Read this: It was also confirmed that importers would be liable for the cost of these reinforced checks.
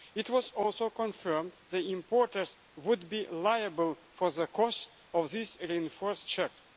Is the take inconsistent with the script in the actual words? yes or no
no